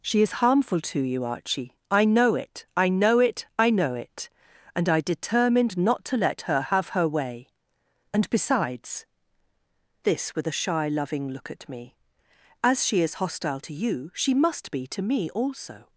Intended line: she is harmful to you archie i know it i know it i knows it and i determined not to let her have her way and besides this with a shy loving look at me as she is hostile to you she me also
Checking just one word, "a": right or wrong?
right